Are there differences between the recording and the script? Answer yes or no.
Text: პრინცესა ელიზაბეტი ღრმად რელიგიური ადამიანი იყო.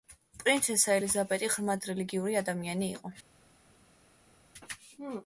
no